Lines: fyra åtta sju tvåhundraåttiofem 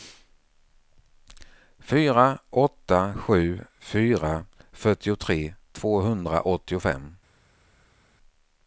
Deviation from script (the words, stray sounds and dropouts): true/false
true